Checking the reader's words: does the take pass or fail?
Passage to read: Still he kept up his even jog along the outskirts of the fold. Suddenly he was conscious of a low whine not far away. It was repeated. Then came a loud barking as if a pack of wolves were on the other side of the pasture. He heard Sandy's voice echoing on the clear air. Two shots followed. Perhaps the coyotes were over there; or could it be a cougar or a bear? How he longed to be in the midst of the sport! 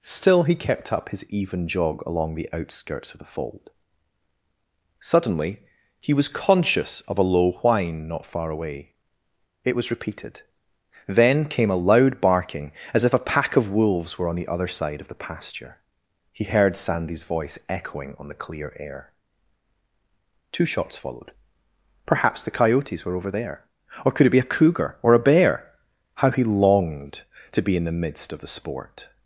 pass